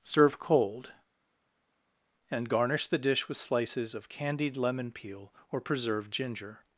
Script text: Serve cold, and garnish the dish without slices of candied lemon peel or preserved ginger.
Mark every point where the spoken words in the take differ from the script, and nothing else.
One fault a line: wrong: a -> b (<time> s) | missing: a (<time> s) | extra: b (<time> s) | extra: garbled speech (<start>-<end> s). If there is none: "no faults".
wrong: without -> with (3.3 s)